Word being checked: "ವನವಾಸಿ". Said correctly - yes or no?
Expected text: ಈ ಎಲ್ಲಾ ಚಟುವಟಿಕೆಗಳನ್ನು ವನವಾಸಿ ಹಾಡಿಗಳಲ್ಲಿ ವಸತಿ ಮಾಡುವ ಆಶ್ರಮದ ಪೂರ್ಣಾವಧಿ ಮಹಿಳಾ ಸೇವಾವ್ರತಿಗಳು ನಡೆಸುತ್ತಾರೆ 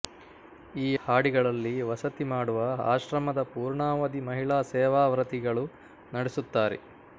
no